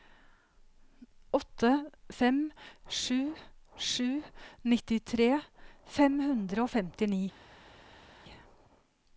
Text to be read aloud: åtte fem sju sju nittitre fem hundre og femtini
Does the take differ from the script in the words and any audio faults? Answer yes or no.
no